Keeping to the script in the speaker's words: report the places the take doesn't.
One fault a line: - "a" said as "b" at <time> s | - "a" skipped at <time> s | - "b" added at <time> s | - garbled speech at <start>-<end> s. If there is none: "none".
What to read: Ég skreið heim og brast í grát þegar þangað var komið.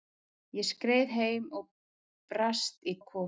- "grát þegar þangað" skipped at 3.0 s